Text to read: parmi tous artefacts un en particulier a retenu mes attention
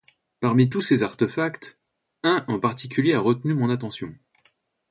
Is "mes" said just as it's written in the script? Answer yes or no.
no